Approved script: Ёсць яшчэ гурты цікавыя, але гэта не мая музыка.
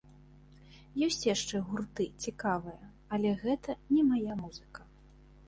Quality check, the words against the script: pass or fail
pass